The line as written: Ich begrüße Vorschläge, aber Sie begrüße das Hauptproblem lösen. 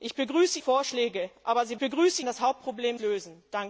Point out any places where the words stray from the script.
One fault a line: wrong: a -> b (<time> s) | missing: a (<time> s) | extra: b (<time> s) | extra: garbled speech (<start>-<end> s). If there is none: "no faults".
no faults